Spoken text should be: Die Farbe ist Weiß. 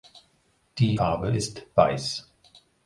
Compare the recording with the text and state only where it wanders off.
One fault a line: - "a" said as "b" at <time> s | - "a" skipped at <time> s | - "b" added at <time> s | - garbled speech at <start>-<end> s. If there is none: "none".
none